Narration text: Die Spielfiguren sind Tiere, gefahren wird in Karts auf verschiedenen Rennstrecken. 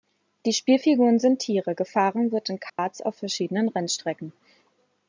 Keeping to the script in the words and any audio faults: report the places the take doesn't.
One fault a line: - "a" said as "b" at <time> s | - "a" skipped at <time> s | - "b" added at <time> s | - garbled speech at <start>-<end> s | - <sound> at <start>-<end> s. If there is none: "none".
- dropout at 2.7-2.8 s